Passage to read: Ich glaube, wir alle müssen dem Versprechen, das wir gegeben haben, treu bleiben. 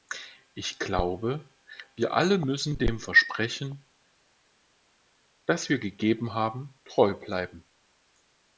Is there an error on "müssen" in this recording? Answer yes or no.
no